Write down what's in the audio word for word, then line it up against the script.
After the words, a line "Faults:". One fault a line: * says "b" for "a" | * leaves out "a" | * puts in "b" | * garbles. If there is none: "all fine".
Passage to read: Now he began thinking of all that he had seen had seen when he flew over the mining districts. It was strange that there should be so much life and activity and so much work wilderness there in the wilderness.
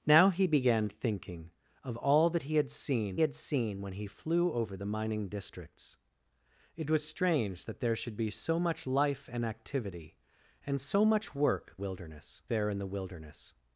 Now he began thinking of all that he had seen had seen when he flew over the mining districts. It was strange that there should be so much life and activity and so much work wilderness there in the wilderness.
Faults:
all fine